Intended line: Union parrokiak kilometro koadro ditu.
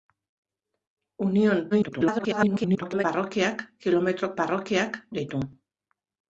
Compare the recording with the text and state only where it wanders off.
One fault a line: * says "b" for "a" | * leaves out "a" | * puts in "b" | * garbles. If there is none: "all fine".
* garbles
* says "parrokiak" for "koadro"